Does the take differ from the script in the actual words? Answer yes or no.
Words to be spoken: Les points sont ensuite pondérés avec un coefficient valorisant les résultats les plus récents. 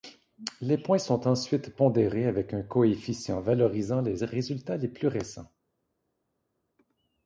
no